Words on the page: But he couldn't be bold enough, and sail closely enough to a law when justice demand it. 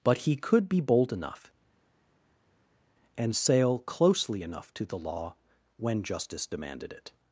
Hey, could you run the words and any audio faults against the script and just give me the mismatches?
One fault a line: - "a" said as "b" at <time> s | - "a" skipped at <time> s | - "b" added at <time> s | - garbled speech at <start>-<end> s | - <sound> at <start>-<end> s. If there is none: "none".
- "couldn't" said as "could" at 0.3 s
- "a" said as "the" at 4.9 s
- "demand" said as "demanded" at 6.5 s